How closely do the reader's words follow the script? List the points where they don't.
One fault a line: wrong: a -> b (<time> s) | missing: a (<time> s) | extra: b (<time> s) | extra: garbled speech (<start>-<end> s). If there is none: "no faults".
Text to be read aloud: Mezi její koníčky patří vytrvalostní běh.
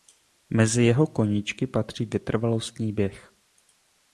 wrong: její -> jeho (0.8 s)